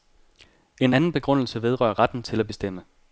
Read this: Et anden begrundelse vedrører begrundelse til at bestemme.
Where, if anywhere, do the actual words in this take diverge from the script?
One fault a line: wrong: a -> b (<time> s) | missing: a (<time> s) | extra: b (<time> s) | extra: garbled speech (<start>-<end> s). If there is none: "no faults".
wrong: Et -> En (0.8 s)
wrong: begrundelse -> retten (2.0 s)